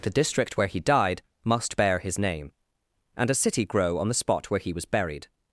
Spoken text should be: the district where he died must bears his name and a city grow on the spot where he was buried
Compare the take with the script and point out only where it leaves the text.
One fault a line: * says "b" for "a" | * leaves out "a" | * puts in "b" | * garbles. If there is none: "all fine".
* says "bear" for "bears"